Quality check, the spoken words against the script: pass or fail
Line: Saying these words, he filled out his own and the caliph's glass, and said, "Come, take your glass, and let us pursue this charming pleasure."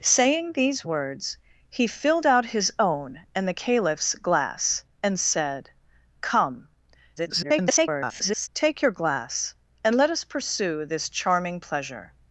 fail